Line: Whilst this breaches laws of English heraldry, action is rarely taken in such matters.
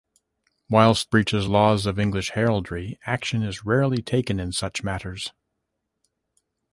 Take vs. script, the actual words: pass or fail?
fail